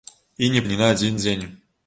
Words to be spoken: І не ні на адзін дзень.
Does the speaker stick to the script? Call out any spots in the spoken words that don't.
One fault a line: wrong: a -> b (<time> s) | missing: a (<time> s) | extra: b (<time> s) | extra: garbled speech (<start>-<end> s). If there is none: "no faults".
no faults